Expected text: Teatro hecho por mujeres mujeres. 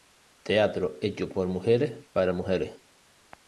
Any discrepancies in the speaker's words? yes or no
yes